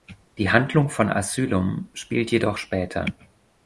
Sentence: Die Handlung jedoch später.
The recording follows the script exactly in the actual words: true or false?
false